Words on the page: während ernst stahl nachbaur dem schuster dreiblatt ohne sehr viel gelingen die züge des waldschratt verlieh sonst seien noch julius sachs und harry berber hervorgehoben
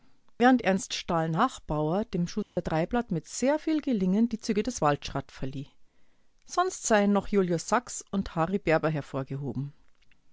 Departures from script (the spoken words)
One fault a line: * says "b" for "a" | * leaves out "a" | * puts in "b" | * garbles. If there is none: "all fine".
* says "mit" for "ohne"